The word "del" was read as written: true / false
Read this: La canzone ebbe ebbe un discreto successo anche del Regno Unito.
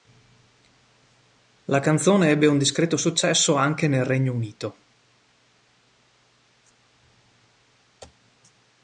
false